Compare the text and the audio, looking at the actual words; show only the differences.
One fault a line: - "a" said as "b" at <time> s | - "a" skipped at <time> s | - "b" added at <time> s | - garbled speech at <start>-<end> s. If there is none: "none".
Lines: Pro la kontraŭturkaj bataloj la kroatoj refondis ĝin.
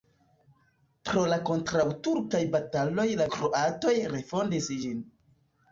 none